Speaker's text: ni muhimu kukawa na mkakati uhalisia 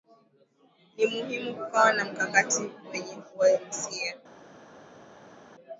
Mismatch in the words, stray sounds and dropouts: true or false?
true